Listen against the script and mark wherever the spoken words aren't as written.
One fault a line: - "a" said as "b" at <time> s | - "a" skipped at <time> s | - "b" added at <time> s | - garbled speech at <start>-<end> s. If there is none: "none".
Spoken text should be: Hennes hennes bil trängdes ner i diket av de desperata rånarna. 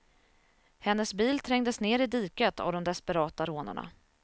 - "hennes" skipped at 1.1 s